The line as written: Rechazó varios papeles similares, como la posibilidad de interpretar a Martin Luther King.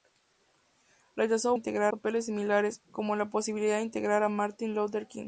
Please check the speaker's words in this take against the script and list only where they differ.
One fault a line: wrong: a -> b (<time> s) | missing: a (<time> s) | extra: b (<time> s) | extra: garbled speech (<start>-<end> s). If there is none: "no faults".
wrong: varios -> interpretar (1.5 s)